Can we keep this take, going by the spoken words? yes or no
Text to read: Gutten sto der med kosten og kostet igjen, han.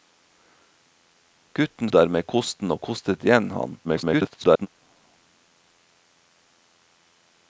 no